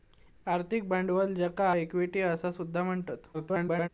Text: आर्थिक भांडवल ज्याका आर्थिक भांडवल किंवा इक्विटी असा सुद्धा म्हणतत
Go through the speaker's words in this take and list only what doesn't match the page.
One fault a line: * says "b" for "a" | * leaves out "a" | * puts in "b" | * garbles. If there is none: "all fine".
* leaves out "आर्थिक भांडवल किंवा"
* garbles